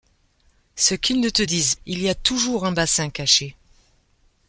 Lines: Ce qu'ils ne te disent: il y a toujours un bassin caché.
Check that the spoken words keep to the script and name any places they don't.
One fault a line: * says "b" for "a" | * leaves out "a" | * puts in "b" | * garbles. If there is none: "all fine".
all fine